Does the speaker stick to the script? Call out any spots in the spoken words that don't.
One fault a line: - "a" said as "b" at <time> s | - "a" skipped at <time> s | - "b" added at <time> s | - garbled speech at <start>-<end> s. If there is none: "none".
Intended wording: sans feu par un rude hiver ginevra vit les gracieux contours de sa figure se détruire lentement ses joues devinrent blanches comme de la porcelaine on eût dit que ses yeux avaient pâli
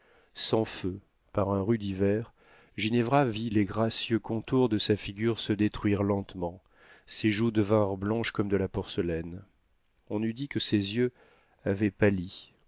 none